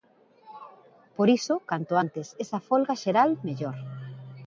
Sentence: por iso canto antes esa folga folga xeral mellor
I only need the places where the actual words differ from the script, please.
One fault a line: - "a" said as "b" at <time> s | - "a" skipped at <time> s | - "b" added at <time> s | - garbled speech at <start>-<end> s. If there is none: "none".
- "folga" skipped at 2.9 s